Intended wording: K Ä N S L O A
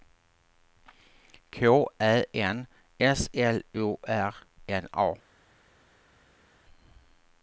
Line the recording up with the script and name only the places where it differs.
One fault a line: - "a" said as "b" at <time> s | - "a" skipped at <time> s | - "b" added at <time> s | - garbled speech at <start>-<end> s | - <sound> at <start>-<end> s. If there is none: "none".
- "R N" added at 4.1 s